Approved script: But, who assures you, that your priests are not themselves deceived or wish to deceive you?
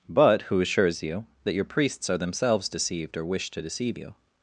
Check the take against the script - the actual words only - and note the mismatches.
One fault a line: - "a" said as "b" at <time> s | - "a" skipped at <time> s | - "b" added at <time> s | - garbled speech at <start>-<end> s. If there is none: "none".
- "not" skipped at 2.2 s